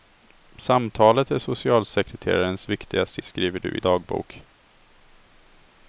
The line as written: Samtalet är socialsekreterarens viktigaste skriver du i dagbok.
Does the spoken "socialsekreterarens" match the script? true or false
true